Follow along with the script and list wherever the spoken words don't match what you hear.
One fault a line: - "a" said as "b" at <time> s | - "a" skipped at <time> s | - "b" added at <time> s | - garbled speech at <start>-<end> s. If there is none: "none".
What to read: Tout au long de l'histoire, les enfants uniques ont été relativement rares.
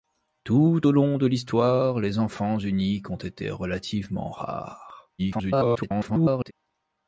- garbled speech at 5.2-6.5 s